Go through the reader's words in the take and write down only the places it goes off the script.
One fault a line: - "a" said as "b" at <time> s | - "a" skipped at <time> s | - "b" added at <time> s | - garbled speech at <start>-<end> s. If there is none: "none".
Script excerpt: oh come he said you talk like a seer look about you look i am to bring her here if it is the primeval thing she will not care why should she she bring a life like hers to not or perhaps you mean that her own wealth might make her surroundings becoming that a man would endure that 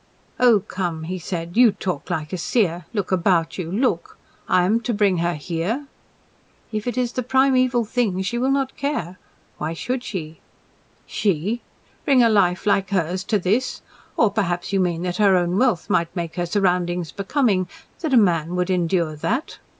- "not" said as "this" at 13.4 s